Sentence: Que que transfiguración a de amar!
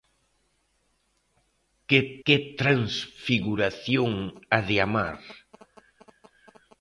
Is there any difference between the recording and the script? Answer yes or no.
no